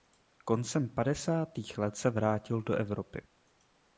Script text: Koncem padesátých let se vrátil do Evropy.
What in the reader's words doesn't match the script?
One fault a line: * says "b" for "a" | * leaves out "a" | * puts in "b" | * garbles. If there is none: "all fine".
all fine